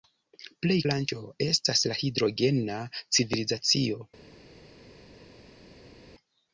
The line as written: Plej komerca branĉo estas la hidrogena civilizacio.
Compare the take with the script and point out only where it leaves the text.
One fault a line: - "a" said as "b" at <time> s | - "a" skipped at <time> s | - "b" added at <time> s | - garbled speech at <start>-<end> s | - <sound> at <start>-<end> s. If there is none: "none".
- "komerca" skipped at 0.8 s